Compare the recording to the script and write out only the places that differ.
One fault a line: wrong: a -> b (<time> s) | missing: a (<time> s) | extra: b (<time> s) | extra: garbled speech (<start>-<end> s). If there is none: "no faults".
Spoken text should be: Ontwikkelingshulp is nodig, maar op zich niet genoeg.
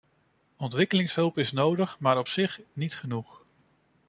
no faults